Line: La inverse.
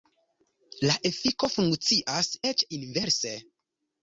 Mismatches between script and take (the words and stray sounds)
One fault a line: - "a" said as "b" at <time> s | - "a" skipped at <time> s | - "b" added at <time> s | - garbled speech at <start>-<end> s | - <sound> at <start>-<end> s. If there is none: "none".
- "efiko funkcias eĉ" added at 1.1 s